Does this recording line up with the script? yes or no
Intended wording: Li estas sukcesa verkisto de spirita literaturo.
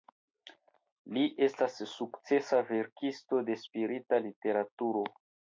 yes